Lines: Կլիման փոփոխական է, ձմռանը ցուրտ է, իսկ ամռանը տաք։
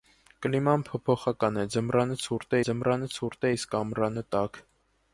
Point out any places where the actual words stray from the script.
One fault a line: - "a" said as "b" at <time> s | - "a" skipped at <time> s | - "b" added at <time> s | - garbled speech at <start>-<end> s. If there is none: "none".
- "ձմռանը ցուրտ" added at 2.7 s